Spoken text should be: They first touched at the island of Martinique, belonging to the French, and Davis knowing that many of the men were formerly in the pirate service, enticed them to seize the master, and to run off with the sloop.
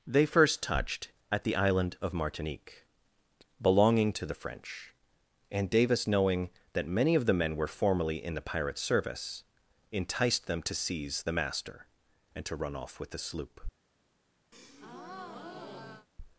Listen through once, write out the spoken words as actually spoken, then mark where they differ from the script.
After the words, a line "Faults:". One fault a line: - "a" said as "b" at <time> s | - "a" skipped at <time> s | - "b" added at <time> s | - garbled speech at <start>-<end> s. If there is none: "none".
They first touched at the island of Martinique, belonging to the French, and Davis knowing that many of the men were formerly in the pirate service, enticed them to seize the master, and to run off with the sloop.
Faults:
none